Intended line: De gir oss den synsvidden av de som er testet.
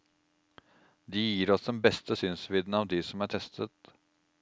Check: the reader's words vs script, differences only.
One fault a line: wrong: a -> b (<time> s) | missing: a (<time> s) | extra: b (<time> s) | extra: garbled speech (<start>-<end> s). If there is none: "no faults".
extra: beste (1.8 s)